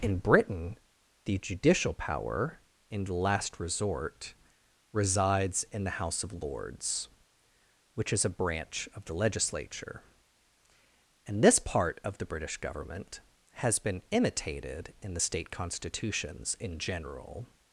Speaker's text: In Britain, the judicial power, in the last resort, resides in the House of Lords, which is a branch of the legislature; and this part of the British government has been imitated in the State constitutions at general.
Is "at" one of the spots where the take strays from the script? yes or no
yes